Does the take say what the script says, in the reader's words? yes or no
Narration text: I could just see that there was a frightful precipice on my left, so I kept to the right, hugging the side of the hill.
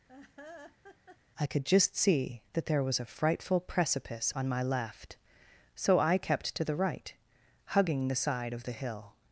yes